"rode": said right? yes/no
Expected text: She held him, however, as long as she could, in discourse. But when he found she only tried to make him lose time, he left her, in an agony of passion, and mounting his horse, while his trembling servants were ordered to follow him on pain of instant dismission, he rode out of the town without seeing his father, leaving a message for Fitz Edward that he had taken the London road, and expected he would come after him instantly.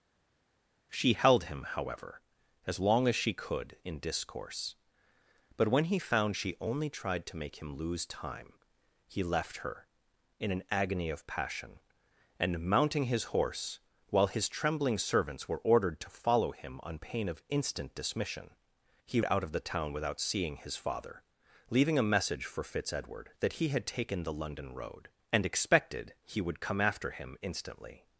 no